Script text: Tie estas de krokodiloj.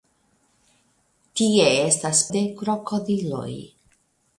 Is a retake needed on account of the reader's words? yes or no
no